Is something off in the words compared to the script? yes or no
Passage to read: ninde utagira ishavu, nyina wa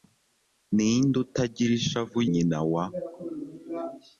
no